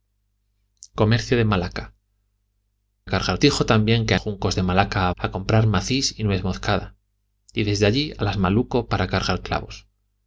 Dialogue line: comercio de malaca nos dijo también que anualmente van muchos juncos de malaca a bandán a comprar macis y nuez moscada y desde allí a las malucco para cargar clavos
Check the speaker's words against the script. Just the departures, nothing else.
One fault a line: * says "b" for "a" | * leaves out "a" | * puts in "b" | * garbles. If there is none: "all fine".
* says "cargar" for "nos"
* leaves out "anualmente van muchos"
* leaves out "bandán"